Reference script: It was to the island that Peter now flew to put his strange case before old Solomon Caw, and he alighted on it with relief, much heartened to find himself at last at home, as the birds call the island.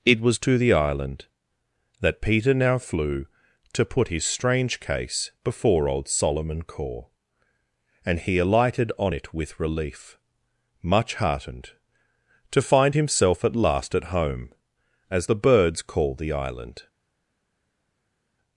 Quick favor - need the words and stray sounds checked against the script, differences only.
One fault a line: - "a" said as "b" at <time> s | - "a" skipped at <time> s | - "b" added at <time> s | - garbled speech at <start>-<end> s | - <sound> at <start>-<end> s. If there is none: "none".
none